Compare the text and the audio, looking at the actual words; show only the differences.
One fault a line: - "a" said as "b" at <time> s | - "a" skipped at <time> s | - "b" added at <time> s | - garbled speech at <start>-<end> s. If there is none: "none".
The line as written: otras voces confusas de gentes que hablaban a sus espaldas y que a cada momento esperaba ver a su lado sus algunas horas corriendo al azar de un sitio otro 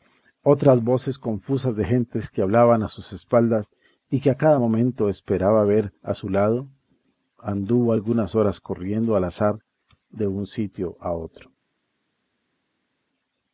- "sus" said as "anduvo" at 7.4 s
- "a" added at 11.0 s